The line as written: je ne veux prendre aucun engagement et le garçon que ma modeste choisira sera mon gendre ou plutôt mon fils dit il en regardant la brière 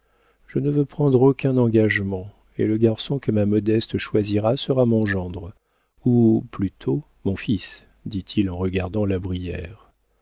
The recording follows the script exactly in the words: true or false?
true